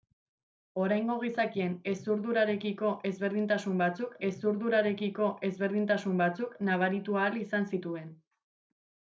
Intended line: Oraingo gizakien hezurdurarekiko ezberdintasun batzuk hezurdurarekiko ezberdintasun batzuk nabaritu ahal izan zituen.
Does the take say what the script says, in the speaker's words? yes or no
yes